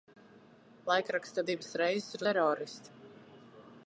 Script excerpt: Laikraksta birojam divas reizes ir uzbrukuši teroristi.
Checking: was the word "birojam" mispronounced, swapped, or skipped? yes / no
yes